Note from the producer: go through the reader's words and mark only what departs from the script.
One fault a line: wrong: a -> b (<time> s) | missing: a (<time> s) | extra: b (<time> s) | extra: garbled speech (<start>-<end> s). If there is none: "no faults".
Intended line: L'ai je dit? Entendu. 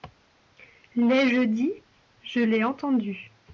extra: Je l'ai (2.2 s)